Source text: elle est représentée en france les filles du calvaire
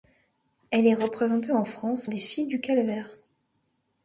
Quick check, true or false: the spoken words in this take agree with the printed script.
true